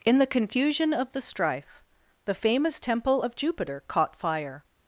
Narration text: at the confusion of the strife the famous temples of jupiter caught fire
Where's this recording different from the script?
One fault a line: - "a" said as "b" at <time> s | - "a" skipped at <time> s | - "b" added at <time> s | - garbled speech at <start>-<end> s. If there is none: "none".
- "at" said as "in" at 0.0 s
- "temples" said as "temple" at 2.8 s